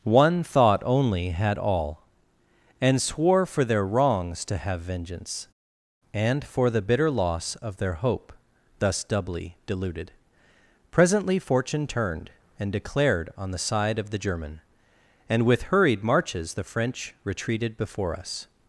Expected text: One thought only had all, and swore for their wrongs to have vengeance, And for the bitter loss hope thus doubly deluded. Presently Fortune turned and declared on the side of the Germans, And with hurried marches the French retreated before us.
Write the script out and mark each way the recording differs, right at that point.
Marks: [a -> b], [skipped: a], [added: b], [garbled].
One thought only had all, and swore for their wrongs to have vengeance, And for the bitter loss [added: of their] hope thus doubly deluded. Presently Fortune turned and declared on the side of the [Germans, -> German] And with hurried marches the French retreated before us.